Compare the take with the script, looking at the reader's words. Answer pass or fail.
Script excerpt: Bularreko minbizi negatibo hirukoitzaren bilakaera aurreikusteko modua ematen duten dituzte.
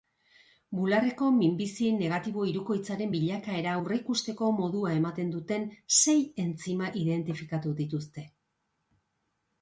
fail